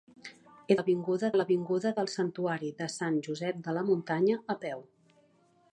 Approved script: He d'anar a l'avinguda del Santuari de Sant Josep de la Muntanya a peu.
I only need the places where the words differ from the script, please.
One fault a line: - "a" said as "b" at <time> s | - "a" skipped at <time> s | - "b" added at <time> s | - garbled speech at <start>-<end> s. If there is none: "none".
- "d'anar" said as "l'avinguda" at 0.8 s